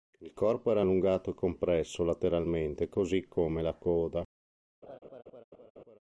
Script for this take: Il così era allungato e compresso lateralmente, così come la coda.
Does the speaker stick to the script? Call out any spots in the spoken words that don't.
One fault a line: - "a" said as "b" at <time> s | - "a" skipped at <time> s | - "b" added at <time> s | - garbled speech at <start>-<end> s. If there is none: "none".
- "così" said as "corpo" at 0.3 s